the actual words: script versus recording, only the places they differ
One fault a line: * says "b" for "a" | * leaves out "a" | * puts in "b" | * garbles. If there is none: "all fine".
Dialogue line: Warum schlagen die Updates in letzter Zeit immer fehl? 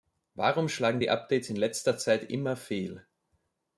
all fine